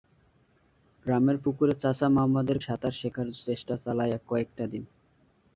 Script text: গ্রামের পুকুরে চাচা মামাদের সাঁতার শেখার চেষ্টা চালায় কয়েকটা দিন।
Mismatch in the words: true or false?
false